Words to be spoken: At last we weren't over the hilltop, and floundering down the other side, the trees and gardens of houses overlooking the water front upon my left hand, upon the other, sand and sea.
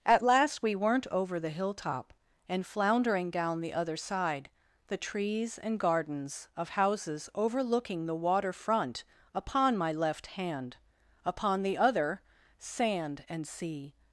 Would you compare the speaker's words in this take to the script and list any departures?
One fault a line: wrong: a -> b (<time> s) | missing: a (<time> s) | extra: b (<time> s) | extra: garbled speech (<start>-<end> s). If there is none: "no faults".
no faults